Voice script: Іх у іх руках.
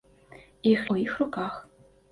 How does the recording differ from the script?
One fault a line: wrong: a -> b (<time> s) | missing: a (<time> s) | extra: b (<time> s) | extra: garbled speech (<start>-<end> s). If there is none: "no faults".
no faults